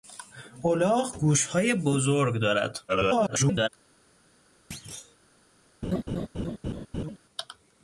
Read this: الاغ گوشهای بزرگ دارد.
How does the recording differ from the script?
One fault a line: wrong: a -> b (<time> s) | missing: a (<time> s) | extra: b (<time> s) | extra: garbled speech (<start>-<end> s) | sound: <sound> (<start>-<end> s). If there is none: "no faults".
extra: garbled speech (2.9-3.7 s)
sound: thud (4.7-5.2 s)
sound: laugh (5.8-7.2 s)